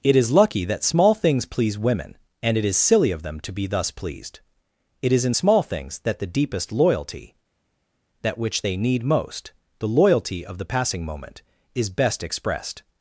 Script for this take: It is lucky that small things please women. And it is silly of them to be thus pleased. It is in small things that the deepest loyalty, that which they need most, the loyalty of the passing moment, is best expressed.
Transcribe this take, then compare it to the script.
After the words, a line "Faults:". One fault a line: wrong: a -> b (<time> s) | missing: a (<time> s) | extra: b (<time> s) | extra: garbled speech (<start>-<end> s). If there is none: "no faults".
It is lucky that small things please women. And it is silly of them to be thus pleased. It is in small things that the deepest loyalty, that which they need most, the loyalty of the passing moment, is best expressed.
Faults:
no faults